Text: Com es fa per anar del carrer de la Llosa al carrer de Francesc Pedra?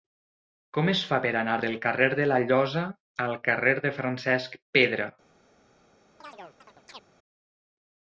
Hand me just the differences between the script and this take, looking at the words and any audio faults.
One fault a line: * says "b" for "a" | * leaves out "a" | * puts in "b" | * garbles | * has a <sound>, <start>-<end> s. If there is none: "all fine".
* has a chirp, 6.2-7.0 s